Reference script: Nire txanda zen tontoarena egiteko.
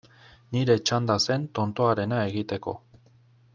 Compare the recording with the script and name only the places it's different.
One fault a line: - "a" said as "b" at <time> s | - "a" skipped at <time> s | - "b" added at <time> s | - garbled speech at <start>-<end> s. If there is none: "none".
none